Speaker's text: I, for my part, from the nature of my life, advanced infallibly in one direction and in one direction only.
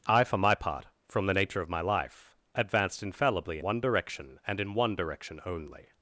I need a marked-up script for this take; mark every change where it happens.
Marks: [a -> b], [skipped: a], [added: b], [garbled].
I, for my part, from the nature of my life, advanced infallibly [skipped: in] one direction and in one direction only.